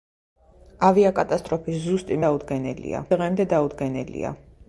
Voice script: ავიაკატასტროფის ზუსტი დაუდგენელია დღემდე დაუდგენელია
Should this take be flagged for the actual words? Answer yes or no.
no